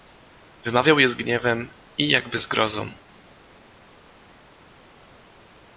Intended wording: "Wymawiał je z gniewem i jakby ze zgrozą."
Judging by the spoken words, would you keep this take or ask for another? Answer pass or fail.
fail